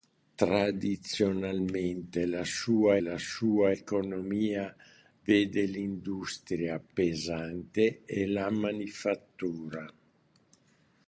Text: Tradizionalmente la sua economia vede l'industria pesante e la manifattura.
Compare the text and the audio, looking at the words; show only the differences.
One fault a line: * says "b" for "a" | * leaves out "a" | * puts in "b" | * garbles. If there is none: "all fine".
* puts in "la sua"